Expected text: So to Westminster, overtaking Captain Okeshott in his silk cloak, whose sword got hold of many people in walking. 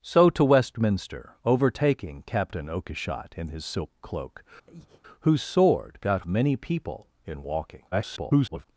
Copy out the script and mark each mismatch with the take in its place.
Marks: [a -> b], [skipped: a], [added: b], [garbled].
So to Westminster, overtaking Captain Okeshott in his silk cloak, whose sword got [skipped: hold of] many people in walking. [garbled]